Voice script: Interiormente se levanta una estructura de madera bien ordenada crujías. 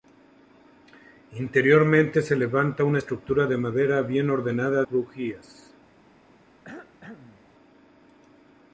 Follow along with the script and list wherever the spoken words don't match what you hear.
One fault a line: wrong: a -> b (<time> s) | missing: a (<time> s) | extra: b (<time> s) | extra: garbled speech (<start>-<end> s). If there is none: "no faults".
no faults